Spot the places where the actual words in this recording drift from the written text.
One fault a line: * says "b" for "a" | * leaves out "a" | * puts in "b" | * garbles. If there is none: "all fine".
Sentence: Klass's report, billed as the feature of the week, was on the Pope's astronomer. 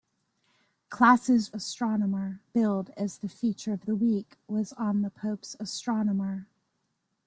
* says "astronomer" for "report"